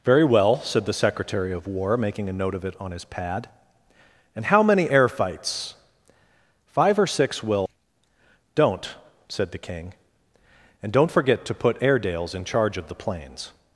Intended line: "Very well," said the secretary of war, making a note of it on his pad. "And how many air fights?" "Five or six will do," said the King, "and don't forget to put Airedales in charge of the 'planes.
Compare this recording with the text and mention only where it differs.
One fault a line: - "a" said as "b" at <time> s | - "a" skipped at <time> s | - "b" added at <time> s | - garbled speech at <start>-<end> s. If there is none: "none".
- "do" said as "don't" at 8.6 s